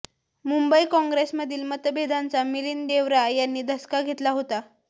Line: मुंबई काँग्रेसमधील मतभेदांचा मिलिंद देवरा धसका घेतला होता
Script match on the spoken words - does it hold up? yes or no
no